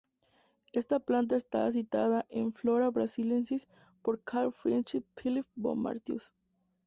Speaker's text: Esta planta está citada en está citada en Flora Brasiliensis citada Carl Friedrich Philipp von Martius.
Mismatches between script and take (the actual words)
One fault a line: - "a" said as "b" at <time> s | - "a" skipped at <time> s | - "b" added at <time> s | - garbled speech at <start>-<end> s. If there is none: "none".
- "está citada en" skipped at 2.5 s
- "citada" said as "por" at 4.0 s